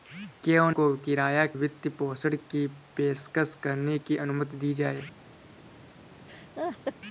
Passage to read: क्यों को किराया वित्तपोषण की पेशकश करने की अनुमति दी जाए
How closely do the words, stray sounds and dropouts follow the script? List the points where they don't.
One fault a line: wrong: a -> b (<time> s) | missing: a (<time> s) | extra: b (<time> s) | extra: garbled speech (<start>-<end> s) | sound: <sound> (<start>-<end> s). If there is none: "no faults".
sound: laugh (6.3-6.9 s)